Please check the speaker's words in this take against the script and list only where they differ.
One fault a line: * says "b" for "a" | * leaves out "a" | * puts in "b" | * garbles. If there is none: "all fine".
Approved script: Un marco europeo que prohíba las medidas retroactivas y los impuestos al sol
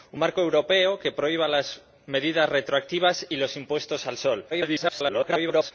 * garbles